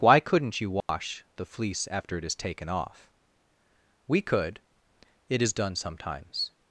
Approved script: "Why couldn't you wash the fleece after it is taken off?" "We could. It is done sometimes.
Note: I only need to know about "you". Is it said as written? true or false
true